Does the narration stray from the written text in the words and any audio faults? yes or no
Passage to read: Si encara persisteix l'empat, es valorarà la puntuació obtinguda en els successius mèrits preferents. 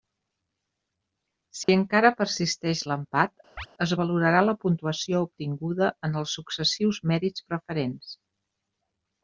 yes